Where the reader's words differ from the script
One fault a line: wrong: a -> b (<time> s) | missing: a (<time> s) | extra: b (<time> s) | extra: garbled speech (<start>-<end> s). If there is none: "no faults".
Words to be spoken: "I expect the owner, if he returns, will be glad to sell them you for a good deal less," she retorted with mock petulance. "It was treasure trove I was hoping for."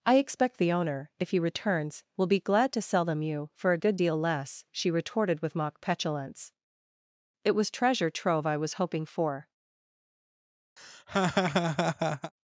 no faults